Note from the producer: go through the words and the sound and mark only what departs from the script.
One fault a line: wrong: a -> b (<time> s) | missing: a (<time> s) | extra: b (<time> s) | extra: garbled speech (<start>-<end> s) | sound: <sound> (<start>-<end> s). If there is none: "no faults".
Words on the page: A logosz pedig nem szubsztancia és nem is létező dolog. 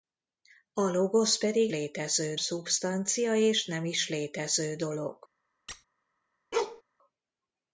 wrong: nem -> létező (1.7 s)
sound: squeak (5.7-5.9 s)
sound: bark (6.5-6.8 s)